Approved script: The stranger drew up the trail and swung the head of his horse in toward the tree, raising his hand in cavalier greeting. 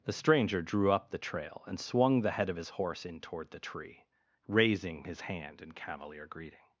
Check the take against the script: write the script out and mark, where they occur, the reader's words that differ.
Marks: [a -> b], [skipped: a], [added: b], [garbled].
The stranger drew up the trail and swung the head of his horse in toward the tree, raising his hand in cavalier greeting.